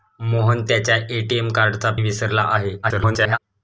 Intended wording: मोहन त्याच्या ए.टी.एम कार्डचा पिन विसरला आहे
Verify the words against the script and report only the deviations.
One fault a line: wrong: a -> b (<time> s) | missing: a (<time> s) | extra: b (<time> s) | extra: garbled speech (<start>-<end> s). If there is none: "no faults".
missing: पिन (1.9 s)
extra: garbled speech (2.8-3.4 s)